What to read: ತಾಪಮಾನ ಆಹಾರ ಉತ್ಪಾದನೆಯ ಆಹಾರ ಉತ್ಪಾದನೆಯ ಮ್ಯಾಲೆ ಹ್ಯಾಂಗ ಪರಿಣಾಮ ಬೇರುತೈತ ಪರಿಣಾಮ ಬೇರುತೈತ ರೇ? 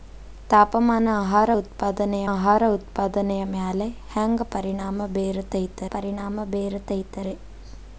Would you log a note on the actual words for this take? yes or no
no